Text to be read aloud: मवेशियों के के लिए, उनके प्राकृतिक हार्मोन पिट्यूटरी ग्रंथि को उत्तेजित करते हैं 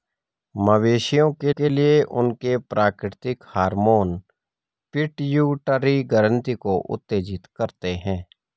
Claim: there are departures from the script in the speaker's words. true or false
false